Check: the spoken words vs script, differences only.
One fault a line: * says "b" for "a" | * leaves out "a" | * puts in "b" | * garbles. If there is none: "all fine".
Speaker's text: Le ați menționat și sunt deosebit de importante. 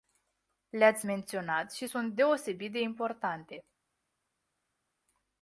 all fine